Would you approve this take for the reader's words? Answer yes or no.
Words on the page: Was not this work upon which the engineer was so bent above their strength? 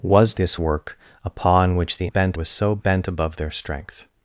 no